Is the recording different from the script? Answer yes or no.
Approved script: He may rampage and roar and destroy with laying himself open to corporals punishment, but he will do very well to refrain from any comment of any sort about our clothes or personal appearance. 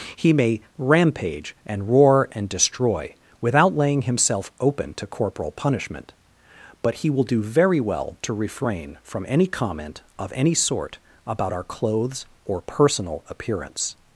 yes